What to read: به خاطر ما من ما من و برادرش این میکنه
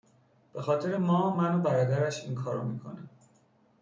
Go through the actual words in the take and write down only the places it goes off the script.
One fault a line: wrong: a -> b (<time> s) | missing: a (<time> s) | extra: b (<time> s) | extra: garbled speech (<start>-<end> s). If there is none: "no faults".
missing: ما من (1.6 s)
extra: کارو (2.3 s)